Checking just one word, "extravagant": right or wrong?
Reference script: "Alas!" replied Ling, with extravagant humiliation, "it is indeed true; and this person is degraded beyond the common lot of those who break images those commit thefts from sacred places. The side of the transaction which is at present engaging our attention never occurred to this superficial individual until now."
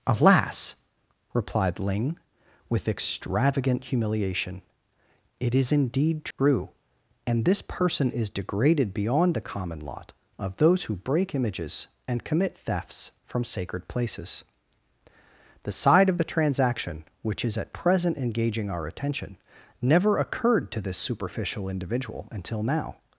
right